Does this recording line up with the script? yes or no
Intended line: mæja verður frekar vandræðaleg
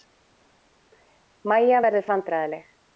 no